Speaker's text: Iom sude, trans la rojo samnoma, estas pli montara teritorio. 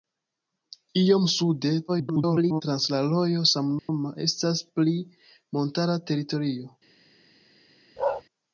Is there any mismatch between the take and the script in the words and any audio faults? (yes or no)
yes